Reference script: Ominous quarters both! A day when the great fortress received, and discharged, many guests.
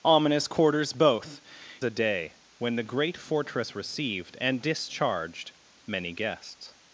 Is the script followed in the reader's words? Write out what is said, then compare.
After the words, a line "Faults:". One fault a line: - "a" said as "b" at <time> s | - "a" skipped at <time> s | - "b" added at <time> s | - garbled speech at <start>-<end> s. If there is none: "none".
Ominous quarters both! A day when the great fortress received, and discharged, many guests.
Faults:
none